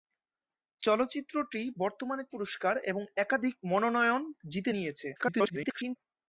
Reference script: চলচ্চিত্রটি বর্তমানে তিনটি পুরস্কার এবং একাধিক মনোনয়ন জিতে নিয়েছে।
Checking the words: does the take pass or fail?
fail